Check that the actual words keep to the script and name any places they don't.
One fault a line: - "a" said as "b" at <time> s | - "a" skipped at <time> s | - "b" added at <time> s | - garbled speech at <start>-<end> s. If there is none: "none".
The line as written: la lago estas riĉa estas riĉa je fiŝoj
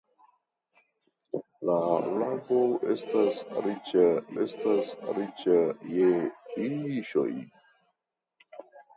none